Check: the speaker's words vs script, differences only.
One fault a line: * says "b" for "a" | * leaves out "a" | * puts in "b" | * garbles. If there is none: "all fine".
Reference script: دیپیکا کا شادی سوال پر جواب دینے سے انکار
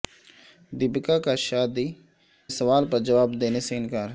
all fine